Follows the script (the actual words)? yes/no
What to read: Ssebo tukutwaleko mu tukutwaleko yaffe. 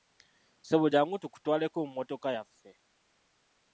no